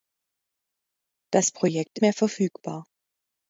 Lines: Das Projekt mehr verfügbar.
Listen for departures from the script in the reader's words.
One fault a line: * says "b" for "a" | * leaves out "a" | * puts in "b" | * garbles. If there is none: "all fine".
all fine